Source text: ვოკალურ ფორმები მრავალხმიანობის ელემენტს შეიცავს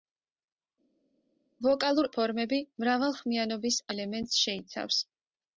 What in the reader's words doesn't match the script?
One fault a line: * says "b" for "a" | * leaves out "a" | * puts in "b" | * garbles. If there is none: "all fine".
all fine